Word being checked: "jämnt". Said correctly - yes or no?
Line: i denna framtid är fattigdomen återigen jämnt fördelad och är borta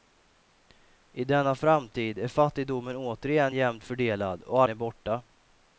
yes